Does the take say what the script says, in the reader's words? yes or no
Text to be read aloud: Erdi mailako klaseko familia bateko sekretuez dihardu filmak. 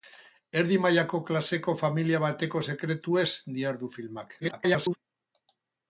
no